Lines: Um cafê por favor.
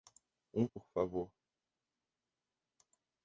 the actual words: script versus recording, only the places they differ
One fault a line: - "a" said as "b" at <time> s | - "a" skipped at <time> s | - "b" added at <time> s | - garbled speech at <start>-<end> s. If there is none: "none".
- "cafê" skipped at 0.7 s